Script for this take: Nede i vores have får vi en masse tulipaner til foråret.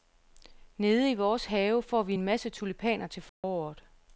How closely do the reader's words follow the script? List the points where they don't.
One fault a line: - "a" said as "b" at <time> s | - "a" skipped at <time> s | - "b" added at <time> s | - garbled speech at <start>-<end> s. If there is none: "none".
none